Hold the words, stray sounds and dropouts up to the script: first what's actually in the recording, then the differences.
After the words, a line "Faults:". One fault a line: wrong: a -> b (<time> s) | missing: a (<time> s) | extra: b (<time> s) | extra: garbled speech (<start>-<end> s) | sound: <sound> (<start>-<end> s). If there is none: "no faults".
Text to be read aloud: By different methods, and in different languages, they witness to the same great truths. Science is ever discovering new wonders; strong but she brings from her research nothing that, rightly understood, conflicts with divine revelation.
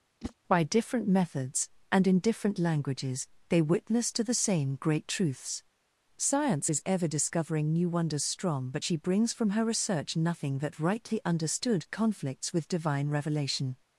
By different methods, and in different languages, they witness to the same great truths. Science is ever discovering new wonders; strong but she brings from her research nothing that, rightly understood, conflicts with divine revelation.
Faults:
sound: whoosh (0.2-0.3 s)